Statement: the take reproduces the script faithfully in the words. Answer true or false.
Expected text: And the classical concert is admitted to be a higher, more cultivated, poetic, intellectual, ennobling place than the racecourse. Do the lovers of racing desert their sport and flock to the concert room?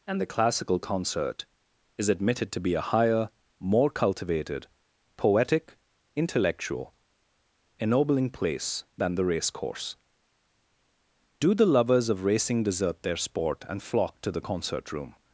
true